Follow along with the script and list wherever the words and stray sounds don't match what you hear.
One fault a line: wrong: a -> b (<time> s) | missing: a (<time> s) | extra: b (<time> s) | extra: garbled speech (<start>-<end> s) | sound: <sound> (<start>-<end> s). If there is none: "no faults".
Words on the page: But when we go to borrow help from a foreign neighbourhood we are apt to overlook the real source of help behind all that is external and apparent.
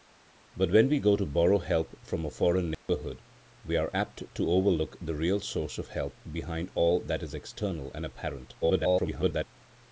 sound: dropout (2.7-2.9 s)
extra: garbled speech (8.6-9.4 s)